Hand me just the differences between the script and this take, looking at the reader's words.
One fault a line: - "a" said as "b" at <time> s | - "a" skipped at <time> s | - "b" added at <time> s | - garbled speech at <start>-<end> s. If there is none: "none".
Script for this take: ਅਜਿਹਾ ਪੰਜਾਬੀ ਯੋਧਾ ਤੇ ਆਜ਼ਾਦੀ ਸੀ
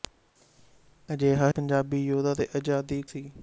none